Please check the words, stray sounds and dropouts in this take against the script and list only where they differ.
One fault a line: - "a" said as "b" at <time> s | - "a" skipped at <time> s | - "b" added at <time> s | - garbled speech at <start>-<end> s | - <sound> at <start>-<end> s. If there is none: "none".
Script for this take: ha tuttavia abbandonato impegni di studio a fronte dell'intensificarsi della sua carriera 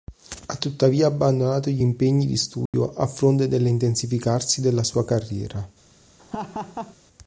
- "gli" added at 1.7 s
- dropout at 2.7-2.7 s
- laugh at 6.2-7.0 s